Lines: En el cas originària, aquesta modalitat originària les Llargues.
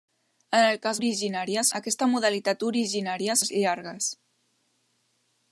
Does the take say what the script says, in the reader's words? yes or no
yes